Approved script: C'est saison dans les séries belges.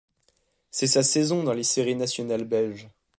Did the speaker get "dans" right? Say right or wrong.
right